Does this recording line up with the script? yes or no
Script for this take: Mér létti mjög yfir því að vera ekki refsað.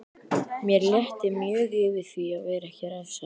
yes